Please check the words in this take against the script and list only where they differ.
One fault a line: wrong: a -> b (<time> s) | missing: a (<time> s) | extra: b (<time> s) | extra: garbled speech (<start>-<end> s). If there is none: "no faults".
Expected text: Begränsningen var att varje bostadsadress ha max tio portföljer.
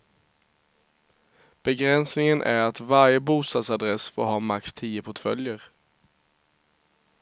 wrong: var -> är (2.4 s)
extra: får (4.1 s)